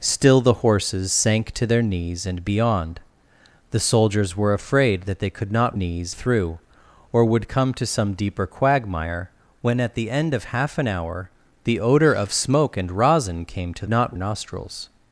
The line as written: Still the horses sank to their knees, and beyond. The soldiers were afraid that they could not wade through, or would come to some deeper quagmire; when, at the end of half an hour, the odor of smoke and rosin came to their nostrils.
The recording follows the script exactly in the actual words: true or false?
false